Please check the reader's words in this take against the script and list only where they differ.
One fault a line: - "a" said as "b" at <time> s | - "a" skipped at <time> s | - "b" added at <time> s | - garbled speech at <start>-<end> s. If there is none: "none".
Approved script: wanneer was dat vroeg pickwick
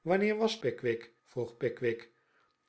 - "dat" said as "pickwick" at 0.6 s